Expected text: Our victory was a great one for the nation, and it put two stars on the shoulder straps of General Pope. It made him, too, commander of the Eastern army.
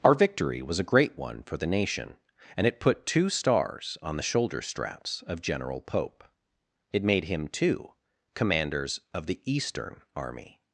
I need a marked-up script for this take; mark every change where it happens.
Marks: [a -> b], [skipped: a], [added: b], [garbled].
Our victory was a great one for the nation, and it put two stars on the shoulder straps of General Pope. It made him, too, [commander -> commanders] of the Eastern army.